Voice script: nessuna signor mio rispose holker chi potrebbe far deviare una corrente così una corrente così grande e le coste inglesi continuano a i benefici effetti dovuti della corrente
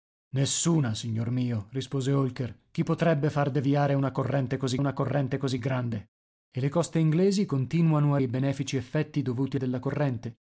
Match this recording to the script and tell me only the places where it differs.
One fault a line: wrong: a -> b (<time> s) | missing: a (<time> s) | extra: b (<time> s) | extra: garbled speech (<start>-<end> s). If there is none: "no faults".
no faults